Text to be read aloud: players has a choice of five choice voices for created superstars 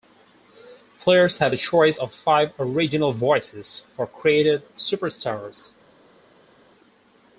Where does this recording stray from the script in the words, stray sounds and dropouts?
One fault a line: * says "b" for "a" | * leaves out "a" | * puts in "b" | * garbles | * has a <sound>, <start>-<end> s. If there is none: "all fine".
* says "have" for "has"
* says "original" for "choice"